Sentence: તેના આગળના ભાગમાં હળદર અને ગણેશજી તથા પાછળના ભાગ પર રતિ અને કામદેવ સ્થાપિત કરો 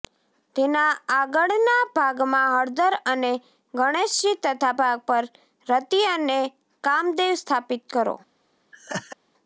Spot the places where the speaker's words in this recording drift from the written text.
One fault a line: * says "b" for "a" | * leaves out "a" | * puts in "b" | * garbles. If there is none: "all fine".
* leaves out "પાછળના"